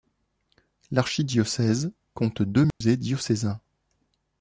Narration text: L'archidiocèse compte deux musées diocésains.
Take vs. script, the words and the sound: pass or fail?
fail